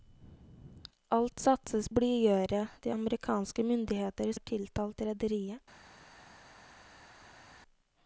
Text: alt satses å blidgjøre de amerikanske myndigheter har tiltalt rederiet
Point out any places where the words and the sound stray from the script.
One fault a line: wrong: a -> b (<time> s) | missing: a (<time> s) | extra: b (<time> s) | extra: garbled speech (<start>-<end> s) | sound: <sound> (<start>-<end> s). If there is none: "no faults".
no faults